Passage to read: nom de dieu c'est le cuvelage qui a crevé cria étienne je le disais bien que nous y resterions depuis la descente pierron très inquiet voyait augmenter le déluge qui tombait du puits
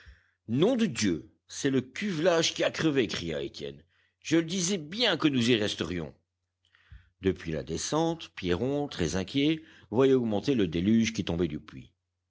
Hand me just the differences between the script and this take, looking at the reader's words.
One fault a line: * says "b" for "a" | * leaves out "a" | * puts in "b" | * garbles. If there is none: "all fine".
all fine